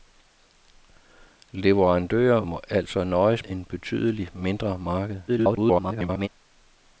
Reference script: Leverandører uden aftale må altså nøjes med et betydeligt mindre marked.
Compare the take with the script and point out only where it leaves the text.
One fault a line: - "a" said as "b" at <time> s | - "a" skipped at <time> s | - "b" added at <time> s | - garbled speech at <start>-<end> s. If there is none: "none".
- "uden aftale" skipped at 2.4 s
- "med" skipped at 3.5 s
- garbled speech at 5.3-6.3 s